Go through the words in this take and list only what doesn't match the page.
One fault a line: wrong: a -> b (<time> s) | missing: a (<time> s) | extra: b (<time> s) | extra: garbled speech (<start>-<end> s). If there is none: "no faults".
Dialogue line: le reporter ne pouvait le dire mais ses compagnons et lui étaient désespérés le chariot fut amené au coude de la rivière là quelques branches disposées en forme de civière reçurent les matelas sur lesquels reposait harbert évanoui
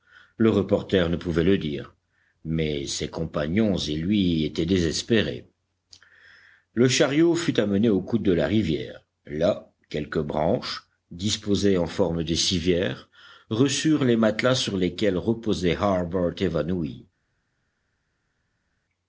no faults